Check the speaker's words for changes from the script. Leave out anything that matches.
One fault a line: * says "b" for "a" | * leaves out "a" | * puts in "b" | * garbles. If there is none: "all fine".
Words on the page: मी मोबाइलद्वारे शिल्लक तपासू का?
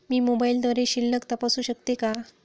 * puts in "शकते"